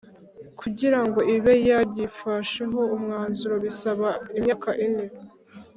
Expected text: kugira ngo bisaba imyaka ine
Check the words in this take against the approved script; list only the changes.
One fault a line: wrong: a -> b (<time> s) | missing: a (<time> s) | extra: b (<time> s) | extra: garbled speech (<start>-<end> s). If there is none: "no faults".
extra: ibe yagifasheho umwanzuro (1.4 s)